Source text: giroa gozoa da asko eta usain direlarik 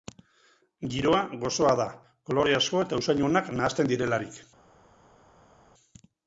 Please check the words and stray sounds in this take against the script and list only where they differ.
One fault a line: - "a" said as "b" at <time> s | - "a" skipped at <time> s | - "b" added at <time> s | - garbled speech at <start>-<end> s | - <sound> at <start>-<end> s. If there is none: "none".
- "kolore" added at 2.3 s
- "onak nahasten" added at 3.3 s